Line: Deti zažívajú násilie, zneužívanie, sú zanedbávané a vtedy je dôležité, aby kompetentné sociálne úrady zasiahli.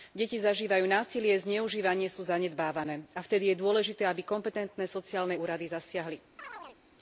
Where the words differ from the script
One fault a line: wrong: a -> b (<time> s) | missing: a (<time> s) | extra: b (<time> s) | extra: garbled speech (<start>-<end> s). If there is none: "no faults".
no faults